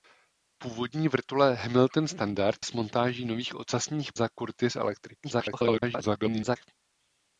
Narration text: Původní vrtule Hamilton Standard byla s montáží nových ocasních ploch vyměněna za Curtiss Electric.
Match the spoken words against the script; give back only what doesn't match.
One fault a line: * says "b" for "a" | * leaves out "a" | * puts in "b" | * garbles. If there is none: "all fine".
* leaves out "byla"
* leaves out "ploch vyměněna"
* garbles